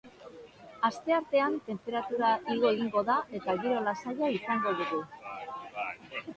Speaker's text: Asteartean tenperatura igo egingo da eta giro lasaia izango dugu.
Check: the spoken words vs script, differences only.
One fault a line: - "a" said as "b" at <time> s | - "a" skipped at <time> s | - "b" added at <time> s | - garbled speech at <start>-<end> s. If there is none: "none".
none